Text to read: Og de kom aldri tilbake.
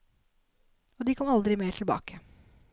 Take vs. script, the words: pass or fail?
fail